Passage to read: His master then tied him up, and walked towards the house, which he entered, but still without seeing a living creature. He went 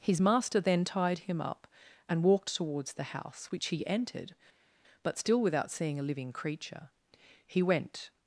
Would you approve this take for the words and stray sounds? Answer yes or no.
yes